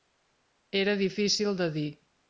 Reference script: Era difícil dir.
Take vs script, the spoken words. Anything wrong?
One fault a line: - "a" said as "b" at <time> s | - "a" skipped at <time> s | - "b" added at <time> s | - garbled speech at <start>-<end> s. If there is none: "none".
- "de" added at 1.6 s